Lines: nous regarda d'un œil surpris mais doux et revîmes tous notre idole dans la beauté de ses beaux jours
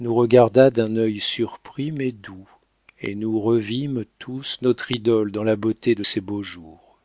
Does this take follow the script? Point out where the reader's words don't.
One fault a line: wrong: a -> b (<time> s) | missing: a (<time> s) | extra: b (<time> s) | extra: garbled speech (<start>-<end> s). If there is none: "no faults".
extra: nous (3.1 s)